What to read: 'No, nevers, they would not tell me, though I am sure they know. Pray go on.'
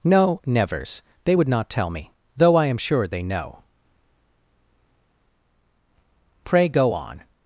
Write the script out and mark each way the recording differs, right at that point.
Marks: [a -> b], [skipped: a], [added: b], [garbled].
'No, nevers, they would not tell me, though I am sure they know. Pray go on.'